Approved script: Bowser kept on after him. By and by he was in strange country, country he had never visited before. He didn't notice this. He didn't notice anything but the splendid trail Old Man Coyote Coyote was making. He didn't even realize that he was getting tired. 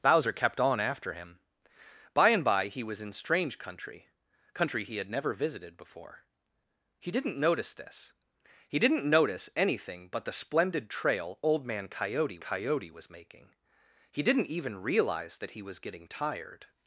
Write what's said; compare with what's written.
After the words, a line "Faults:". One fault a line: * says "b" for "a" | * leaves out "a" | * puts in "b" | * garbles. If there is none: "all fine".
Bowser kept on after him. By and by he was in strange country, country he had never visited before. He didn't notice this. He didn't notice anything but the splendid trail Old Man Coyote Coyote was making. He didn't even realize that he was getting tired.
Faults:
all fine